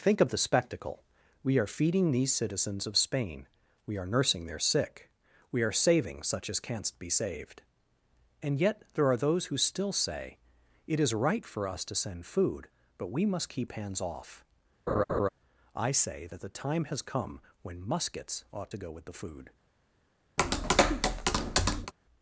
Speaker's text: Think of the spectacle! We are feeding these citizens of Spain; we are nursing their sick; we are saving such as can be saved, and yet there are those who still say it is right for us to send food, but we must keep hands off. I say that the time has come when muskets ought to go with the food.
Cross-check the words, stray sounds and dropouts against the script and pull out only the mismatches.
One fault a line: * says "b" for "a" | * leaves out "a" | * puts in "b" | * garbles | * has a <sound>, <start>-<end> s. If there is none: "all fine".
* says "canst" for "can"
* has a laugh, 14.9-15.3 s
* has a tap, 20.4-21.9 s